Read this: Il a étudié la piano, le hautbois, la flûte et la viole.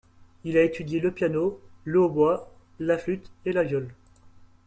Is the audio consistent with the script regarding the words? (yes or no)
no